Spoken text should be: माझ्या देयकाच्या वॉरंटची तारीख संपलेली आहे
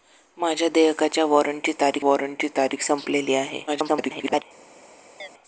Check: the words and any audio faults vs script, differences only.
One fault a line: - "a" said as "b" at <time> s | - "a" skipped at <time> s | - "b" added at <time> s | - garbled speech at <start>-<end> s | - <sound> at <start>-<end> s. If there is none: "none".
- "वॉरंटची तारीख" added at 2.0 s
- garbled speech at 3.7-4.4 s
- chirp at 5.2-5.3 s